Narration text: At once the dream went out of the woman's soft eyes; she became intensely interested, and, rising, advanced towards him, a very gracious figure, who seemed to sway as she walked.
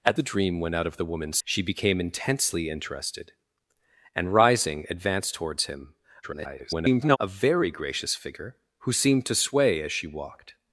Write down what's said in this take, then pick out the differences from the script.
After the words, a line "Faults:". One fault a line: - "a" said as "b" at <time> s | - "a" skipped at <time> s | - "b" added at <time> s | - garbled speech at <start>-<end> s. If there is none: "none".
At the dream went out of the woman's; she became intensely interested, and, rising, advanced towards him, [garbled] a very gracious figure, who seemed to sway as she walked.
Faults:
- "once" skipped at 0.2 s
- "soft eyes" skipped at 1.4 s
- garbled speech at 6.2-7.2 s